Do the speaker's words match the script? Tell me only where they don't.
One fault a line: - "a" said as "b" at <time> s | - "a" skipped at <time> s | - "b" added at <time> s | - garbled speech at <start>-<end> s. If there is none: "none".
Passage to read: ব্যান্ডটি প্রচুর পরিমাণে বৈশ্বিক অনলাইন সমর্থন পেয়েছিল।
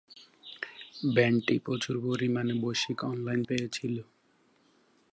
- "সমর্থন" skipped at 3.4 s